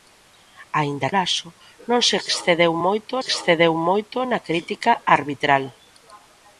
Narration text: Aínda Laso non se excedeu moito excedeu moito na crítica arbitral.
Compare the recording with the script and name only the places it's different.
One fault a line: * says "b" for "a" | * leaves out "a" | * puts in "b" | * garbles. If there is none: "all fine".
all fine